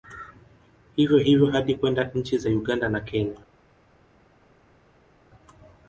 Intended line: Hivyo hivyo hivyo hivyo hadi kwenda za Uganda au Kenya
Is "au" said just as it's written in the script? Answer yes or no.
no